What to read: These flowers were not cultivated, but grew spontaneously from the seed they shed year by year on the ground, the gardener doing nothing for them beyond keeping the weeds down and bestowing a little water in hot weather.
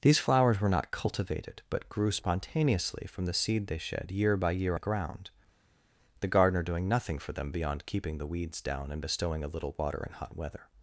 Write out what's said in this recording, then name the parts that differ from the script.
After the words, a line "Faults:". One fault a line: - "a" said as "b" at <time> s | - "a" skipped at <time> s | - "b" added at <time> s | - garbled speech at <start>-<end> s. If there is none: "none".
These flowers were not cultivated, but grew spontaneously from the seed they shed year by year the ground, the gardener doing nothing for them beyond keeping the weeds down and bestowing a little water in hot weather.
Faults:
- "on" skipped at 4.8 s